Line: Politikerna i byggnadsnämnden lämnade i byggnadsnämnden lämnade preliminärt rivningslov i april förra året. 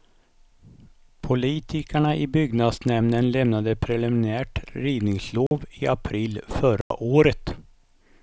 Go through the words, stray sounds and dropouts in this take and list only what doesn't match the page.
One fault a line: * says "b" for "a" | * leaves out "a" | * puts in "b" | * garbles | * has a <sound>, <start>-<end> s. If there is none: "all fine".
* leaves out "i byggnadsnämnden lämnade"
* has a dropout, 5.5-5.5 s
* has a dropout, 6.8-6.9 s